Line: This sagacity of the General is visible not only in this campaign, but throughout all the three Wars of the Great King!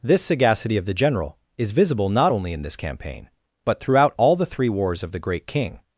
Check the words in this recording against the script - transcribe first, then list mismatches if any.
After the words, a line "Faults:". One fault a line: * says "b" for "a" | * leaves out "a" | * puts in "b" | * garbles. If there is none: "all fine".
This sagacity of the General is visible not only in this campaign, but throughout all the three Wars of the Great King!
Faults:
all fine